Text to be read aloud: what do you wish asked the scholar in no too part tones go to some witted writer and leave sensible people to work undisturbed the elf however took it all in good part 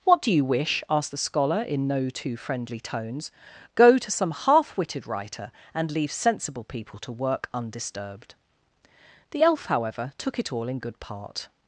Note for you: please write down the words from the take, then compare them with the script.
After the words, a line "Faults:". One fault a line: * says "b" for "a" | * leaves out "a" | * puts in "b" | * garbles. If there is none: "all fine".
what do you wish asked the scholar in no too friendly tones go to some half witted writer and leave sensible people to work undisturbed the elf however took it all in good part
Faults:
* says "friendly" for "part"
* puts in "half"